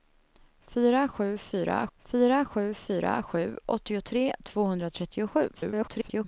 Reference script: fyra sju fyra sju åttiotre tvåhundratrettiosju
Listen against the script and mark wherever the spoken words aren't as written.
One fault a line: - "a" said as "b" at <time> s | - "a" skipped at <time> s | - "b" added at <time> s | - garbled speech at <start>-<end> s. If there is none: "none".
- "fyra sju fyra" added at 2.0 s
- garbled speech at 5.5-6.2 s